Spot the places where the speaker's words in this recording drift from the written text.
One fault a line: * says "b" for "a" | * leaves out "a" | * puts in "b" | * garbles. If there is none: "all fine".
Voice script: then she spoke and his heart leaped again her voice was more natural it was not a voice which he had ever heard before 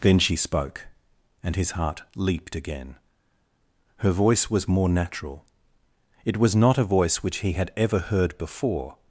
all fine